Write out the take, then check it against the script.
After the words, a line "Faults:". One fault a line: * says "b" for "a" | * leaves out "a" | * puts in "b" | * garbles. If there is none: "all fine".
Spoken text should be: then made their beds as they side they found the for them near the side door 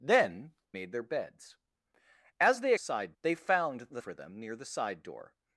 then made their beds as they side they found the for them near the side door
Faults:
all fine